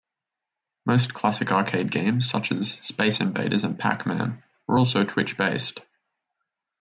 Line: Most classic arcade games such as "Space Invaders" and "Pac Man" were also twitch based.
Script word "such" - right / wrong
right